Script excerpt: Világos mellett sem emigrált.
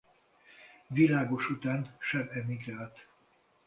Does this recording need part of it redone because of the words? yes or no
yes